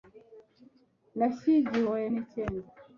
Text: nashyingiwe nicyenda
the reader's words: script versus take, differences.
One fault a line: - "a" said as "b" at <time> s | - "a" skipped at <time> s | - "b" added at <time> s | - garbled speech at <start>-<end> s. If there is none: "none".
none